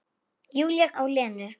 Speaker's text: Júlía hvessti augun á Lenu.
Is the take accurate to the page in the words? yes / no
no